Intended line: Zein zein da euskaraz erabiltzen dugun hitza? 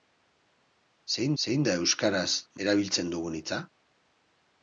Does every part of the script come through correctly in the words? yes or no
yes